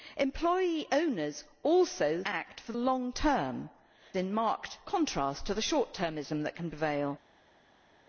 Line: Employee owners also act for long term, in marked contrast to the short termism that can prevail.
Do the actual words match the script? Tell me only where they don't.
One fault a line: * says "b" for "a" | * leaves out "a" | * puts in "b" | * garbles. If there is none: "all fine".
all fine